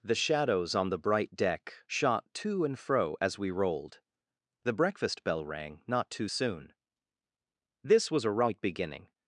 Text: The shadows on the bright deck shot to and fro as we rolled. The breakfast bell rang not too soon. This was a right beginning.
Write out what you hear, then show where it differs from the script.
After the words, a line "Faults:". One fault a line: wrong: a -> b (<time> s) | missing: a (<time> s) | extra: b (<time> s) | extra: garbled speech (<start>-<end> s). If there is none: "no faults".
The shadows on the bright deck shot to and fro as we rolled. The breakfast bell rang not too soon. This was a right beginning.
Faults:
no faults